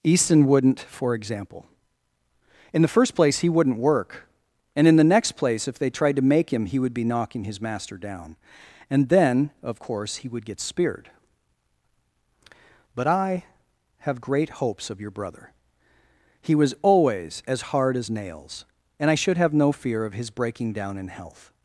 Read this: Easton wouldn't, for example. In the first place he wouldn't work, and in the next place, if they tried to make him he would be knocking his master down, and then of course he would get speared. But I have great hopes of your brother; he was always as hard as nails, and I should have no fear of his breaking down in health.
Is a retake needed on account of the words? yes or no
no